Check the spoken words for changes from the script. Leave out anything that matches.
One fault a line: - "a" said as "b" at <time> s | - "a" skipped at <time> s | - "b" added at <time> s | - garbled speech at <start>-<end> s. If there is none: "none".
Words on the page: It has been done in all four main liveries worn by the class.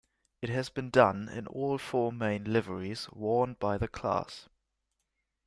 none